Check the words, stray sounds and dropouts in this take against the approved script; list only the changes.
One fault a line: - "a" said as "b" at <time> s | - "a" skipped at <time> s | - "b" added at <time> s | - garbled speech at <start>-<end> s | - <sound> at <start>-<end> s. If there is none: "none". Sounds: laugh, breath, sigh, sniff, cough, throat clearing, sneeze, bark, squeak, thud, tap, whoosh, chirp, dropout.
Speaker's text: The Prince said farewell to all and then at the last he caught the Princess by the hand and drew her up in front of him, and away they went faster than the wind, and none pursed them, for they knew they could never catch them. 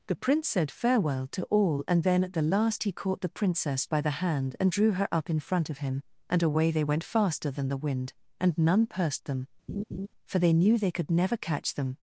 - laugh at 9.7-10.1 s